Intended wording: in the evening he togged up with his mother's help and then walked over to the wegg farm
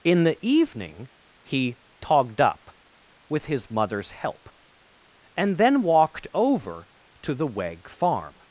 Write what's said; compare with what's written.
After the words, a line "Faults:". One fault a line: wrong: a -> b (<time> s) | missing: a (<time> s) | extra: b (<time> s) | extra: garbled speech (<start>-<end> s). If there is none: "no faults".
in the evening he togged up with his mother's help and then walked over to the wegg farm
Faults:
no faults